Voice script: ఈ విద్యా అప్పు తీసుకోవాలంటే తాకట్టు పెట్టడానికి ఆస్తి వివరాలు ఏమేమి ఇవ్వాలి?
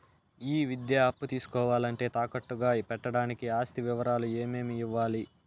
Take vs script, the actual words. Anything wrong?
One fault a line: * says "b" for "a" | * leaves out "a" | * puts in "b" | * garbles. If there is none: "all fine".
* puts in "గా"